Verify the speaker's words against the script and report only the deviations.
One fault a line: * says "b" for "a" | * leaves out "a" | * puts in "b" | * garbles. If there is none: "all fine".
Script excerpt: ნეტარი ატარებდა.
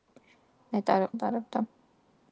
all fine